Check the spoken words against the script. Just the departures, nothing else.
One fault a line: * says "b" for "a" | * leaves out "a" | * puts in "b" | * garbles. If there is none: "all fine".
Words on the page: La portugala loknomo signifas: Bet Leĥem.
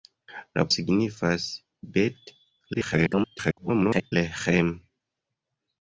* leaves out "portugala loknomo"
* garbles